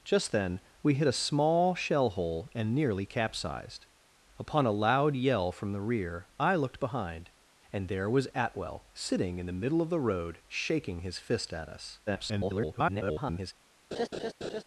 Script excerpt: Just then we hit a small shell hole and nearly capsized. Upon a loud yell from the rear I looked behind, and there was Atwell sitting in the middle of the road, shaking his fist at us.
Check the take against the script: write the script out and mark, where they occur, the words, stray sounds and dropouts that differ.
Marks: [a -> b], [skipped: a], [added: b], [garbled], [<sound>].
Just then we hit a small shell hole and nearly capsized. Upon a loud yell from the rear I looked behind, and there was Atwell sitting in the middle of the road, shaking his fist at us. [garbled] [laugh]